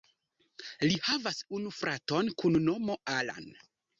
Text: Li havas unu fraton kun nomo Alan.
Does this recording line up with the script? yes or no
yes